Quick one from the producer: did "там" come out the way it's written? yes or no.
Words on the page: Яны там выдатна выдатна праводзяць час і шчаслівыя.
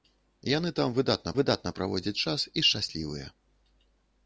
yes